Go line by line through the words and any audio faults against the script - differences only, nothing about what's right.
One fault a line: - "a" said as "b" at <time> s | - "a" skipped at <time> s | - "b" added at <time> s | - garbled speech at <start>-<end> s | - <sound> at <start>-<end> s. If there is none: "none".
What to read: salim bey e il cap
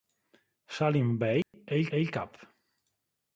- dropout at 1.4-1.5 s
- "e il" added at 1.9 s